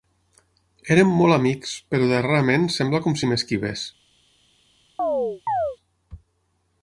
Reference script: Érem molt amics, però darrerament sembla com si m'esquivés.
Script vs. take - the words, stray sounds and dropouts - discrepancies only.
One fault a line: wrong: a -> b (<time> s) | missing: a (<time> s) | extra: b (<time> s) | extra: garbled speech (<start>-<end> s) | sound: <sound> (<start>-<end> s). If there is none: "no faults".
sound: chirp (5.0-5.8 s)